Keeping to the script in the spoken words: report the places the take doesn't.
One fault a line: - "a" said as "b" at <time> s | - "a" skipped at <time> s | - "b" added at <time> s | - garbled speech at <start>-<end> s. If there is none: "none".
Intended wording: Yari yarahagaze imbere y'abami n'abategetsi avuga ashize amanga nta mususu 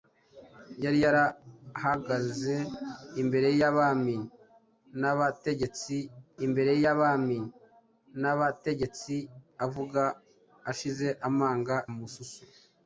- "imbere y'abami n'abategetsi" added at 6.4 s
- "nta" skipped at 11.7 s